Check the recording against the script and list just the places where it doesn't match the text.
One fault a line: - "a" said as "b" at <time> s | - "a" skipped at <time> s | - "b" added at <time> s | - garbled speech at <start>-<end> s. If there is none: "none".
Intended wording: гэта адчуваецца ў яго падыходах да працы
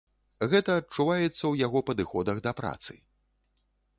none